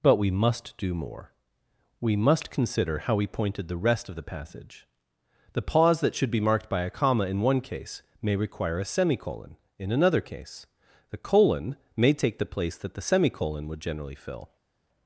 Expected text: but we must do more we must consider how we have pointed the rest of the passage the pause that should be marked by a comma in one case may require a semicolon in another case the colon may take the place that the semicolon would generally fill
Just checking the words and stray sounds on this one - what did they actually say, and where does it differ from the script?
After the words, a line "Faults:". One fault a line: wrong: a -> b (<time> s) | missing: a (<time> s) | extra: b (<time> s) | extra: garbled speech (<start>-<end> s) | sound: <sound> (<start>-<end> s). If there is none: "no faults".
but we must do more we must consider how we pointed the rest of the passage the pause that should be marked by a comma in one case may require a semicolon in another case the colon may take the place that the semicolon would generally fill
Faults:
missing: have (3.3 s)